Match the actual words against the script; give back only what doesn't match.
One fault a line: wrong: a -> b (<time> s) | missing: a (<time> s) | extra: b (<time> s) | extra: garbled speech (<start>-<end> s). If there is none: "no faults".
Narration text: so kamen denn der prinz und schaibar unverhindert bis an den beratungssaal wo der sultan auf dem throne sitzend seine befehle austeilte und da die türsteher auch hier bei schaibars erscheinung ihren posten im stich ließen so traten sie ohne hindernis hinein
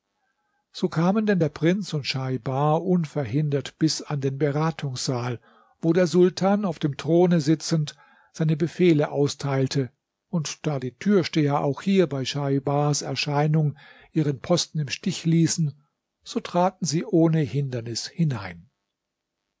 no faults